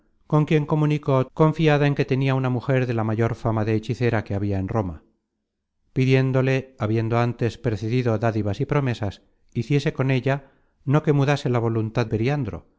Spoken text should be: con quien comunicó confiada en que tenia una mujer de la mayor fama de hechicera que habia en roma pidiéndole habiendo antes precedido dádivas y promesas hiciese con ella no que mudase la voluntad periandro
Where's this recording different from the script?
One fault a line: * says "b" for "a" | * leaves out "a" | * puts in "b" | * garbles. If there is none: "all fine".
all fine